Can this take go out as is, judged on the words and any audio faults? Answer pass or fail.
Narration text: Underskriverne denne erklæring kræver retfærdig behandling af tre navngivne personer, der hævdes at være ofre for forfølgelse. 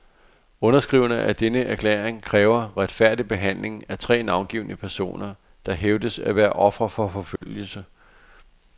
fail